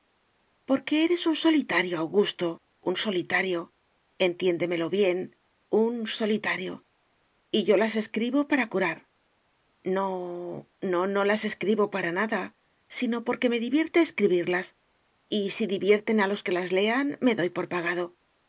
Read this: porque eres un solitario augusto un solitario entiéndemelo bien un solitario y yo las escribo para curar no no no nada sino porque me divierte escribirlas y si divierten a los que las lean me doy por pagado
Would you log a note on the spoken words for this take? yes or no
yes